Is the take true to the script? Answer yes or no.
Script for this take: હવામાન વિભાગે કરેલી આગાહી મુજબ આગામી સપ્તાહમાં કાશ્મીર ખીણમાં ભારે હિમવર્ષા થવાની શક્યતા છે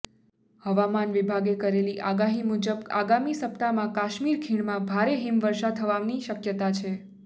yes